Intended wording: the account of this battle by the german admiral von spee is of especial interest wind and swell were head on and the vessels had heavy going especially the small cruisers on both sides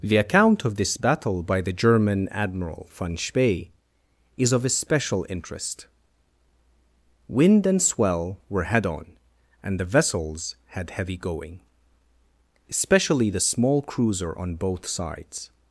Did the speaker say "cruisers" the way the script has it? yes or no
no